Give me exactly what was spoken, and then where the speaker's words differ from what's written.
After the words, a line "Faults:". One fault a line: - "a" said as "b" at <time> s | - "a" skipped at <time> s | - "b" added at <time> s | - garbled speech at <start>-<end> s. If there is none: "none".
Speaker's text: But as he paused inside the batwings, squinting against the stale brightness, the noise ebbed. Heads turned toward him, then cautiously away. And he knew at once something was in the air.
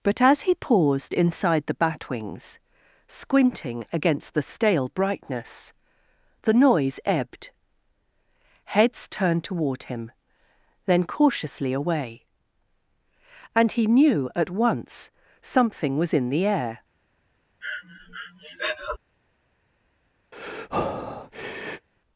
But as he paused inside the batwings, squinting against the stale brightness, the noise ebbed. Heads turned toward him, then cautiously away. And he knew at once something was in the air.
Faults:
none